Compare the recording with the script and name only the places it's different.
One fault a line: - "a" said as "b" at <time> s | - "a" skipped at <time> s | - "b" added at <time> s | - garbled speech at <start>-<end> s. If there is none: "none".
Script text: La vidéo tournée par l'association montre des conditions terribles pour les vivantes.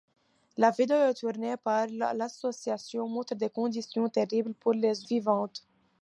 none